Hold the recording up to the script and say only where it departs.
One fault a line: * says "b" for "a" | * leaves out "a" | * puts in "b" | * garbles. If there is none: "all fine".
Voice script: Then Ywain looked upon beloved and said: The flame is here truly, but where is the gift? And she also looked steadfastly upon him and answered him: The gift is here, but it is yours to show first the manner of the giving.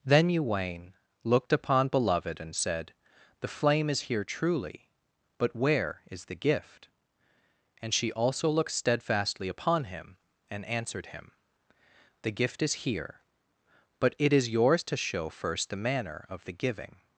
all fine